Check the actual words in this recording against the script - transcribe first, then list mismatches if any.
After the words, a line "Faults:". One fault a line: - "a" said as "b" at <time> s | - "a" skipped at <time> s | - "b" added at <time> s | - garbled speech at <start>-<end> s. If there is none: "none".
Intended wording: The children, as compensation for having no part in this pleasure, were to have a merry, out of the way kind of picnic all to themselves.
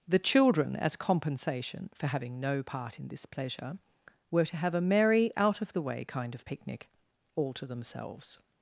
The children, as compensation for having no part in this pleasure, were to have a merry, out of the way kind of picnic all to themselves.
Faults:
none